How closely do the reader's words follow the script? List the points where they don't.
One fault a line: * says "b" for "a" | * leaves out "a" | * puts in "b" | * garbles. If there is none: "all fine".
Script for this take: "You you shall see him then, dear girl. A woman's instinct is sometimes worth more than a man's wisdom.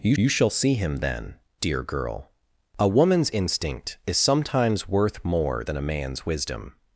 all fine